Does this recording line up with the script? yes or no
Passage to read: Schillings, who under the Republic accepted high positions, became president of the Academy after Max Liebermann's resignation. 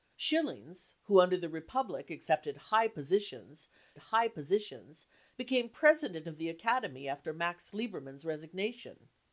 no